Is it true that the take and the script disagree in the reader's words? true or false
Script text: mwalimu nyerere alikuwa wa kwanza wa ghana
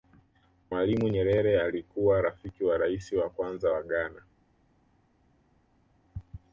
true